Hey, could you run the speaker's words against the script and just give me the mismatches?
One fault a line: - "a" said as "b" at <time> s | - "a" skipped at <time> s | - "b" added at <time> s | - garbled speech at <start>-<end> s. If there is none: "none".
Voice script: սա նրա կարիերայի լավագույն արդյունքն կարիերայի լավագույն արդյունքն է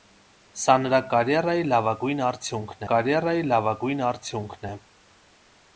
none